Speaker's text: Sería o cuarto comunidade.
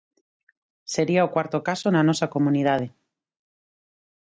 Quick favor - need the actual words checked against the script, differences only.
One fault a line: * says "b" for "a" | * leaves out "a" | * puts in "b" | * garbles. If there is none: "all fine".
* puts in "caso na nosa"